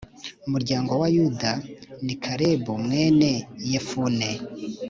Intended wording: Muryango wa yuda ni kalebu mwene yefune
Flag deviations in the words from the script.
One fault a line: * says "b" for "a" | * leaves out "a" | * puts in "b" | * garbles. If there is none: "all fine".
all fine